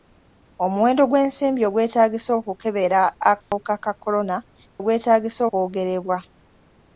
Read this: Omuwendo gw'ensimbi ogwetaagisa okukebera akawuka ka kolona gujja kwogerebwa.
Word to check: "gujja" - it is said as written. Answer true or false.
false